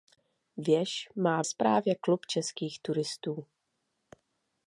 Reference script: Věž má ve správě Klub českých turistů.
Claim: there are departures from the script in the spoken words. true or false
true